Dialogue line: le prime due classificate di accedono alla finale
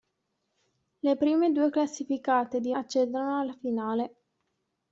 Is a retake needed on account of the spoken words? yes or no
no